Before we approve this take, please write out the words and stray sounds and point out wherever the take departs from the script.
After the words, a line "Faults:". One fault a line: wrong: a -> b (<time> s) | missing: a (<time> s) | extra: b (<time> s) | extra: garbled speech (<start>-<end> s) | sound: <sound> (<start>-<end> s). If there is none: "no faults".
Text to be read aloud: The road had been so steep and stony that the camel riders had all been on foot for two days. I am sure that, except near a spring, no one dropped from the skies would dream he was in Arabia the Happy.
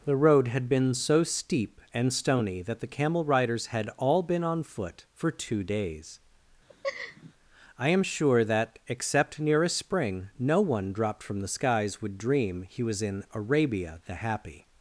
The road had been so steep and stony that the camel riders had all been on foot for two days. I am sure that, except near a spring, no one dropped from the skies would dream he was in Arabia the Happy.
Faults:
sound: laugh (6.7-7.3 s)